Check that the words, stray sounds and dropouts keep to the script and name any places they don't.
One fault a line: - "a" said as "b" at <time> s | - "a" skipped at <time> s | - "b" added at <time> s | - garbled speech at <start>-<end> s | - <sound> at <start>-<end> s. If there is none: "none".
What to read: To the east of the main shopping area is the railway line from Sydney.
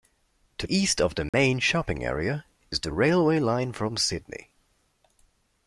- "the" skipped at 0.7 s
- dropout at 1.3-1.3 s